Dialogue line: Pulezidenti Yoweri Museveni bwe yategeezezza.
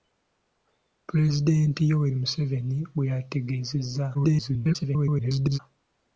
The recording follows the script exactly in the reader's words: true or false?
false